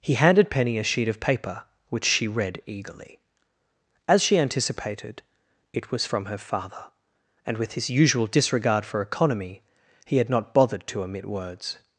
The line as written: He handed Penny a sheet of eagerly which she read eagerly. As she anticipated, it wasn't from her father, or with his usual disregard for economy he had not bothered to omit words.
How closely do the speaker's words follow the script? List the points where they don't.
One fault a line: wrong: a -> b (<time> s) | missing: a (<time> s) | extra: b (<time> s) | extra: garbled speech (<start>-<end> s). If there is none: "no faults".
wrong: eagerly -> paper (1.2 s)
wrong: wasn't -> was (5.9 s)
wrong: or -> and (7.5 s)